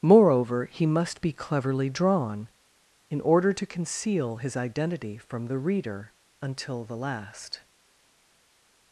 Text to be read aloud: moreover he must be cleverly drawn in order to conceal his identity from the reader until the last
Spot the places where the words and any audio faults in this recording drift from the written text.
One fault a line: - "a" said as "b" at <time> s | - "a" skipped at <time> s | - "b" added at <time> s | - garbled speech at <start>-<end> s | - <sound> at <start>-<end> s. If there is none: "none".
none